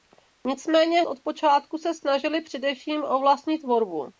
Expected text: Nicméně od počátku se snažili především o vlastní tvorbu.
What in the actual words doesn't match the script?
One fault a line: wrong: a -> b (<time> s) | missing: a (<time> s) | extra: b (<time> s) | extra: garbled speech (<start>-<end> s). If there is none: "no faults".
no faults